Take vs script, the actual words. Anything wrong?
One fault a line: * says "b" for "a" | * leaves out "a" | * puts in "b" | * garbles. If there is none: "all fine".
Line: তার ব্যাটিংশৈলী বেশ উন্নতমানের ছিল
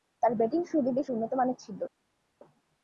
all fine